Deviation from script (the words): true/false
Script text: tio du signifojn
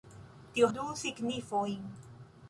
false